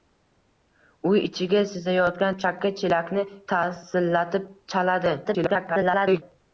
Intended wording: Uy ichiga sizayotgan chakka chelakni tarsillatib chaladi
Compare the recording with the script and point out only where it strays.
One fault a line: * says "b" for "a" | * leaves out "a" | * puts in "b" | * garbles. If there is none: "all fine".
* garbles